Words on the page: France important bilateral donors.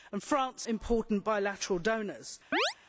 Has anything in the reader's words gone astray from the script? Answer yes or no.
no